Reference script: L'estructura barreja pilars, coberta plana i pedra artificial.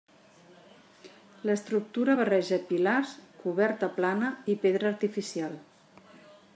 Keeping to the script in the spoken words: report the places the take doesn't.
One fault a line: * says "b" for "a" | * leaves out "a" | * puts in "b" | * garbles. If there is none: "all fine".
all fine